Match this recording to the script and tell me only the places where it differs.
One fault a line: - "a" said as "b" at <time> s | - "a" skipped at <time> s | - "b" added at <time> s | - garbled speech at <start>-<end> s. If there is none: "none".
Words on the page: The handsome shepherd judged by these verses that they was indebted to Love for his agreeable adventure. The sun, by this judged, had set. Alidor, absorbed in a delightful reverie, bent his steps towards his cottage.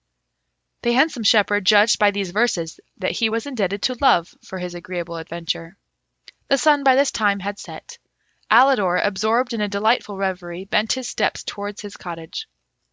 - "they" said as "he" at 3.1 s
- "judged" said as "time" at 7.1 s